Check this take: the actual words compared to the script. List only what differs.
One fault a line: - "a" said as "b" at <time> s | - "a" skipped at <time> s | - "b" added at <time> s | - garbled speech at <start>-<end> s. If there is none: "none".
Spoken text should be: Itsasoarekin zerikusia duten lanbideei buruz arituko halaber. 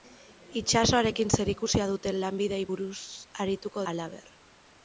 none